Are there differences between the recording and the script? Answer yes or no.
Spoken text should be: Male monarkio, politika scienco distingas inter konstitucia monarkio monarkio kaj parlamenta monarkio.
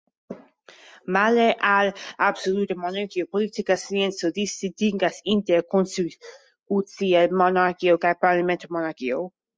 yes